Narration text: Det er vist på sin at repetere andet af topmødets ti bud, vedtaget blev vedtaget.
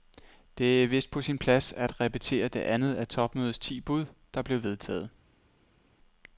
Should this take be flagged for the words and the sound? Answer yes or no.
yes